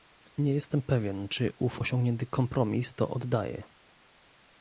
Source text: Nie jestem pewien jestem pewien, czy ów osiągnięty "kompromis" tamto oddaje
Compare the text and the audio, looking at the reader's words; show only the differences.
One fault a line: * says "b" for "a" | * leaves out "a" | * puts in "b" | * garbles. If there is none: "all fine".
* leaves out "jestem pewien"
* says "to" for "tamto"